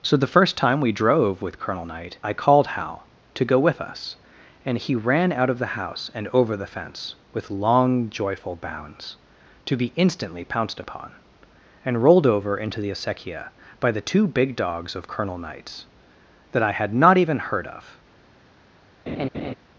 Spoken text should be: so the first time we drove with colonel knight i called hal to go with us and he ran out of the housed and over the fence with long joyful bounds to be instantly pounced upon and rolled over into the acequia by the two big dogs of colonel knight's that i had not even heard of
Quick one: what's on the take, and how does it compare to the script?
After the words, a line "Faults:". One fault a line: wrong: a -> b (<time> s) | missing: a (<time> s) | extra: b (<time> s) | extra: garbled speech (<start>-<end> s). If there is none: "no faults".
so the first time we drove with colonel knight i called hal to go with us and he ran out of the house and over the fence with long joyful bounds to be instantly pounced upon and rolled over into the acequia by the two big dogs of colonel knight's that i had not even heard of
Faults:
wrong: housed -> house (5.7 s)